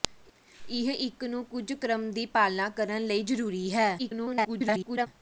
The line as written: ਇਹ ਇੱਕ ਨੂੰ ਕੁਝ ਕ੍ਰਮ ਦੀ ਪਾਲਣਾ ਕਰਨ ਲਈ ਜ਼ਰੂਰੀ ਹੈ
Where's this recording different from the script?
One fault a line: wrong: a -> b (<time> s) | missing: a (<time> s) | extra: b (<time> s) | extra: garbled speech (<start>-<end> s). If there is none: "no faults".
extra: garbled speech (4.0-5.1 s)